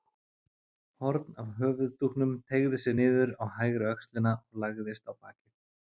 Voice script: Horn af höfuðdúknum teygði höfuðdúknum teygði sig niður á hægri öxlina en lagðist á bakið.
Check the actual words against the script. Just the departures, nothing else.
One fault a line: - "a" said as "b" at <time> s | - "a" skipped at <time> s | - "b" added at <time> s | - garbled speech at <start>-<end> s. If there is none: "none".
- "höfuðdúknum teygði" skipped at 2.8 s
- "en" said as "og" at 4.4 s